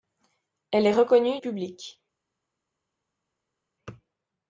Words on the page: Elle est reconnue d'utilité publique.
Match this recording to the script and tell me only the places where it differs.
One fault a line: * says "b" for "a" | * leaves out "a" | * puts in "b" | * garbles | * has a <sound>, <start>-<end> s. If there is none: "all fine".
* leaves out "d'utilité"